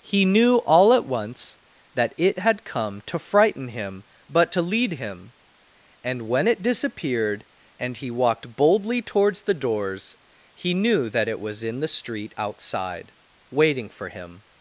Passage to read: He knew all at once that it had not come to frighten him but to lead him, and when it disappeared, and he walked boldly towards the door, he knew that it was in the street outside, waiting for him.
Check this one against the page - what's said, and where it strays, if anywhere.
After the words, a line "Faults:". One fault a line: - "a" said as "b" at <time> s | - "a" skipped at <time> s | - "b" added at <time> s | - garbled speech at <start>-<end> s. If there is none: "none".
He knew all at once that it had come to frighten him but to lead him, and when it disappeared, and he walked boldly towards the doors, he knew that it was in the street outside, waiting for him.
Faults:
- "not" skipped at 2.6 s
- "door" said as "doors" at 9.5 s